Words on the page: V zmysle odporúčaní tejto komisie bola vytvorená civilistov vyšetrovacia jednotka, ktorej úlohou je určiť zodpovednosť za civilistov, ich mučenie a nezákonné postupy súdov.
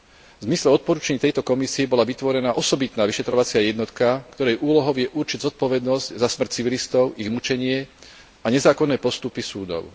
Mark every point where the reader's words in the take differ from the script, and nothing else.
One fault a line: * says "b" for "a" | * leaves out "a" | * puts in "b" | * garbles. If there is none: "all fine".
* says "osobitná" for "civilistov"
* puts in "smrť"